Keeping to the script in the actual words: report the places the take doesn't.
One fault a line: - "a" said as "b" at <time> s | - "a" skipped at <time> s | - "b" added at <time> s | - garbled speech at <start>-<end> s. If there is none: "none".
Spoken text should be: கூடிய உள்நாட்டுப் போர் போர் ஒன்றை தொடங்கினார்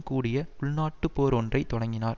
- "போர்" skipped at 1.3 s